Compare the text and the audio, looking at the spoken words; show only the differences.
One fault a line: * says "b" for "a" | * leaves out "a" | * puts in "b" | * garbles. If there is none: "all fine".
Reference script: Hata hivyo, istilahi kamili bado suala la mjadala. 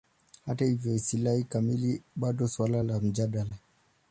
all fine